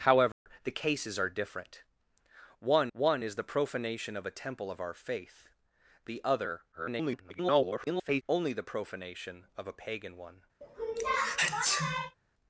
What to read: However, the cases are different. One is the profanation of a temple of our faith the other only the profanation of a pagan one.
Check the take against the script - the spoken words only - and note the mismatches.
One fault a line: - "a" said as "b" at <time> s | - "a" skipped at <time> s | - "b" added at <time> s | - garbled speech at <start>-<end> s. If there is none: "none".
- "one" added at 2.9 s
- garbled speech at 6.7-8.2 s